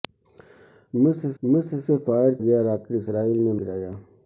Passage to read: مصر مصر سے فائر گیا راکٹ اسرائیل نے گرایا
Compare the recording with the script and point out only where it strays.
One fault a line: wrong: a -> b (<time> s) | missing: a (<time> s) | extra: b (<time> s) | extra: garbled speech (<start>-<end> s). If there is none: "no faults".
no faults